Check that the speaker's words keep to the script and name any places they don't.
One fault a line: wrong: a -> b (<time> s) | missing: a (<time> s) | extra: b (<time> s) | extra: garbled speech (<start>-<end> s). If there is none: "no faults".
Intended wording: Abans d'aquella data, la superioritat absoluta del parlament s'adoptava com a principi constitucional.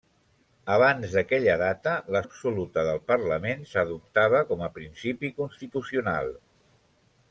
missing: superioritat (2.2 s)